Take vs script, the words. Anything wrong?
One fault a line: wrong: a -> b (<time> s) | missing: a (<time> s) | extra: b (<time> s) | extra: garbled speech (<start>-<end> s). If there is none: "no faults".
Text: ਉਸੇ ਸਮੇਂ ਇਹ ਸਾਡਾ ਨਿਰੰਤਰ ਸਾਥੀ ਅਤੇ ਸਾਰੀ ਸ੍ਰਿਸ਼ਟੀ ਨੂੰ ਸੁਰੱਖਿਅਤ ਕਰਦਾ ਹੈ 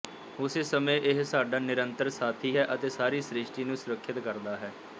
extra: ਹੈ (2.5 s)